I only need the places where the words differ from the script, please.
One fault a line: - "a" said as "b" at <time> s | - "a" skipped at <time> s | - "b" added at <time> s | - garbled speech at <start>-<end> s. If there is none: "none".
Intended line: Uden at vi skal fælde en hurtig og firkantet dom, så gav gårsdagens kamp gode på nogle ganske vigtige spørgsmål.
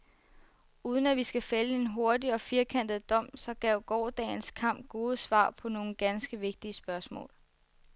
- "svar" added at 5.2 s